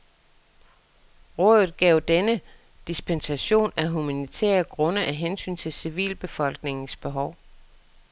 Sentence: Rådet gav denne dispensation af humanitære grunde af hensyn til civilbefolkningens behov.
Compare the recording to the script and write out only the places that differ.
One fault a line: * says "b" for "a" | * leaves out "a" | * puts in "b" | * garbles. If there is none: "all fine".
all fine